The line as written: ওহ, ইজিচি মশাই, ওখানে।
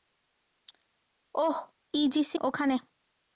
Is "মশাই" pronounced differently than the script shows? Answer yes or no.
yes